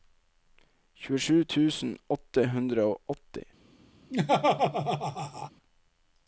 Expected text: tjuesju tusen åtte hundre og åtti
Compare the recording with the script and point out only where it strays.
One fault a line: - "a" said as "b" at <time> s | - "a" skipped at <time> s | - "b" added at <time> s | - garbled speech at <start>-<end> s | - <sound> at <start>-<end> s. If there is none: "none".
- laugh at 4.1-5.5 s